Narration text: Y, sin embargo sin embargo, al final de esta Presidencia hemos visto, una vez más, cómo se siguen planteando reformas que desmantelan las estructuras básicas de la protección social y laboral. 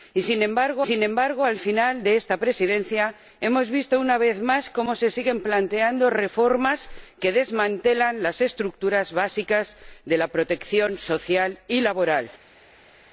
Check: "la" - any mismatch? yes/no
no